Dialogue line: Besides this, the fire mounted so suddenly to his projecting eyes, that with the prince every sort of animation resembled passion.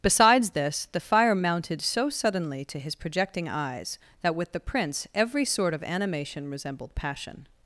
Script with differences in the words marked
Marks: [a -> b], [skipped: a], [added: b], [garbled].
Besides this, the fire mounted so suddenly to his projecting eyes, that with the prince every sort of animation resembled passion.